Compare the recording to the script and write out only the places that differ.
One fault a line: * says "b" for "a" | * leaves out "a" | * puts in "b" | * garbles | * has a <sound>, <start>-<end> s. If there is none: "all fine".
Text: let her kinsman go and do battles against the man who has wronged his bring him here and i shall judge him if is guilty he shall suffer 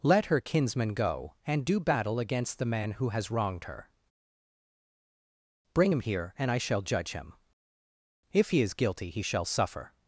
* says "battle" for "battles"
* says "her" for "his"
* puts in "he"